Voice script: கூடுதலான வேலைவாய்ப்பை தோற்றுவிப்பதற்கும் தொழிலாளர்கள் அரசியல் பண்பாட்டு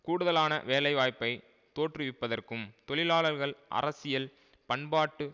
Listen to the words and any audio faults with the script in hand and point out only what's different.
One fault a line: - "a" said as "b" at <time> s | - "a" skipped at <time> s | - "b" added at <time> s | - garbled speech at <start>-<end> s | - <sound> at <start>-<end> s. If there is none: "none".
none